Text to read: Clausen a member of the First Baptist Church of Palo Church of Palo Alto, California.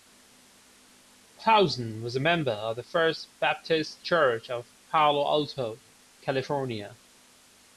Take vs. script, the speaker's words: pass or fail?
fail